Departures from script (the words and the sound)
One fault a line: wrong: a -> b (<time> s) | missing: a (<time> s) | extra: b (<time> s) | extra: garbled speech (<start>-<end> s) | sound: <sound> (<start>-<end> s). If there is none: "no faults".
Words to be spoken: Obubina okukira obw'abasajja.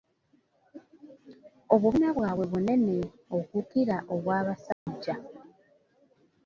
extra: bwabwe bunene (2.2 s)
sound: dropout (4.7-4.9 s)